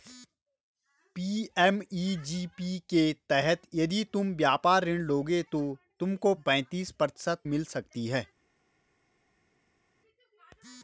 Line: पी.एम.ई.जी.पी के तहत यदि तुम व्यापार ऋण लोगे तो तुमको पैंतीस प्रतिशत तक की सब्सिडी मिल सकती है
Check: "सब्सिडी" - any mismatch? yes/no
yes